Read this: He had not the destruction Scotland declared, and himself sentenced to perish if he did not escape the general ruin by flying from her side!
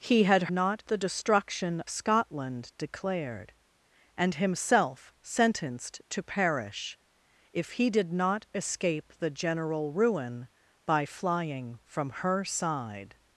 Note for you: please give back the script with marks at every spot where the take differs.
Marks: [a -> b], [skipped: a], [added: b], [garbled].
He had not the destruction Scotland declared, and himself sentenced to perish if he did not escape the general ruin by flying from her side!